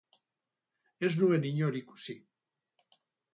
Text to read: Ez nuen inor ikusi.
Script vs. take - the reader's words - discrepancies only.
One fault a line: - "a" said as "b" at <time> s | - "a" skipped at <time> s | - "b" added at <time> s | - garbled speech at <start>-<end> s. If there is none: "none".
none